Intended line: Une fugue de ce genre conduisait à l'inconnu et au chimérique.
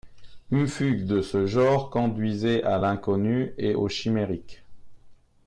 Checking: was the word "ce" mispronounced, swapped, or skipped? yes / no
no